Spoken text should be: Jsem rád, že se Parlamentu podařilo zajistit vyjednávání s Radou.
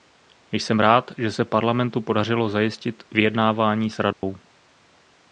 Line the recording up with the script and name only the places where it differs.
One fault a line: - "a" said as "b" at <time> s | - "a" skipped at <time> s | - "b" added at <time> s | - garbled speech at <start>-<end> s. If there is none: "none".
none